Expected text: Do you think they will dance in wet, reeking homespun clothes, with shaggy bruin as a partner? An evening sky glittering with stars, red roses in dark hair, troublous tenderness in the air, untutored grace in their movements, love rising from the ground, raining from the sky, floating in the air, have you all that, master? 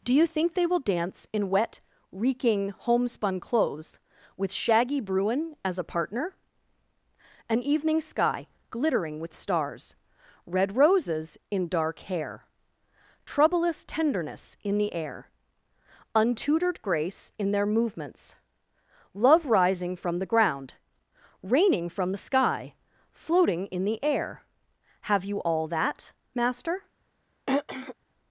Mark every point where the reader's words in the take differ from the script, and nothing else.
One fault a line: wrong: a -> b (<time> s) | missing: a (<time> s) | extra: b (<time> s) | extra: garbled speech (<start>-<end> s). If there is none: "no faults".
no faults